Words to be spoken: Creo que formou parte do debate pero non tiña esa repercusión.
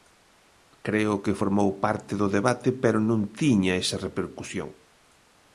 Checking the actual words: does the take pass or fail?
pass